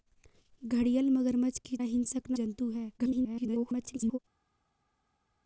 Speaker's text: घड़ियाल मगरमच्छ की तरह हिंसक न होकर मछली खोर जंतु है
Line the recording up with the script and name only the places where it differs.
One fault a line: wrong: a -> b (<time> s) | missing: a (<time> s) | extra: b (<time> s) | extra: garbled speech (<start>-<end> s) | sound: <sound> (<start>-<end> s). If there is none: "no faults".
missing: तरह (1.8 s)
missing: होकर मछली खोर (2.4 s)
extra: garbled speech (3.0-4.2 s)